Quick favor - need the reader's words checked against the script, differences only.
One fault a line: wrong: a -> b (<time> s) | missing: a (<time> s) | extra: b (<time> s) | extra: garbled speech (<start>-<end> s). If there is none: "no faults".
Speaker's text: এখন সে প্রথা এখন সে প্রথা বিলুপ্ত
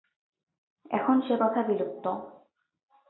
missing: এখন সে প্রথা (1.6 s)